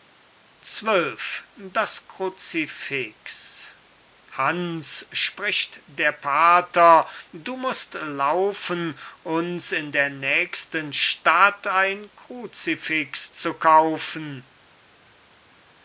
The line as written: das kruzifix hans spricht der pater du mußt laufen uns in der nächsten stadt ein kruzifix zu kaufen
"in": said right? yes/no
yes